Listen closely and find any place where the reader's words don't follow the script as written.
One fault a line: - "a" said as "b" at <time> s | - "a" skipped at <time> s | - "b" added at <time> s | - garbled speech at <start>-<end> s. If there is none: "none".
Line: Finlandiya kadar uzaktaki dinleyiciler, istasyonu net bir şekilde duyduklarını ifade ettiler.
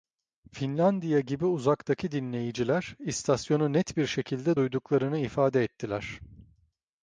- "kadar" said as "gibi" at 1.2 s